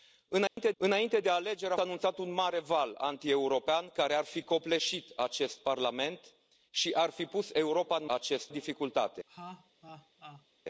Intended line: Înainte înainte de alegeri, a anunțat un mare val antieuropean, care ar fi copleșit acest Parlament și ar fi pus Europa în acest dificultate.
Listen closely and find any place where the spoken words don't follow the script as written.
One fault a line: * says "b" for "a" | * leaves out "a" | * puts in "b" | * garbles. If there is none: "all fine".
all fine